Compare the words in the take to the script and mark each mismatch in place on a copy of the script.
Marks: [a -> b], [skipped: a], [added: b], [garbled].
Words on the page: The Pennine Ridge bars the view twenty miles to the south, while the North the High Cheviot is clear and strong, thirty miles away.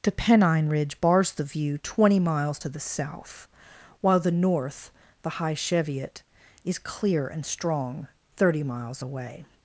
The Pennine Ridge bars the view twenty miles to the south, while the North the High Cheviot is clear and strong, thirty miles away.